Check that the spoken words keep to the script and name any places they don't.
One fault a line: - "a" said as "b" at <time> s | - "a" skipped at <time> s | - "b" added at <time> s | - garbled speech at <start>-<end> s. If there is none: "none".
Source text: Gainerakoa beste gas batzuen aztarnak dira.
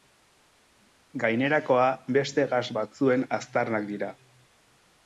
none